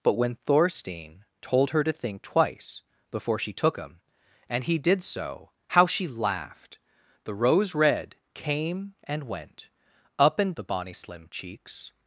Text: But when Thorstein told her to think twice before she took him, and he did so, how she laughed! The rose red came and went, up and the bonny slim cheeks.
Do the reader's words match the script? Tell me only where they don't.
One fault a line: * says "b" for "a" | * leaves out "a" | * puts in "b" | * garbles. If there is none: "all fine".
all fine